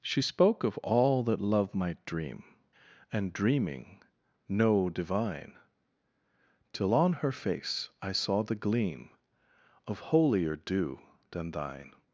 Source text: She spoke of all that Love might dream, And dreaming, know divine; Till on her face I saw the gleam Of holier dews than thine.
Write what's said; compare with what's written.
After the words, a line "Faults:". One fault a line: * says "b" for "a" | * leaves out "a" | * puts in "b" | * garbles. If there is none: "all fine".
She spoke of all that Love might dream, And dreaming, know divine; Till on her face I saw the gleam Of holier dew than thine.
Faults:
* says "dew" for "dews"